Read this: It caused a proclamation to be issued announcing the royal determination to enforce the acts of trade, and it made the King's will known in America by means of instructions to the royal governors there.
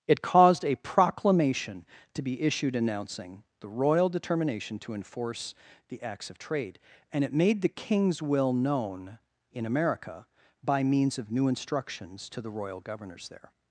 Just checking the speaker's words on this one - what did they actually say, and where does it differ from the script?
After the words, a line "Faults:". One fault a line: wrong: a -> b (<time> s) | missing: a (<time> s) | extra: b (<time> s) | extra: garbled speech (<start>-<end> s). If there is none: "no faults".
It caused a proclamation to be issued announcing the royal determination to enforce the acts of trade, and it made the King's will known in America by means of new instructions to the royal governors there.
Faults:
extra: new (11.3 s)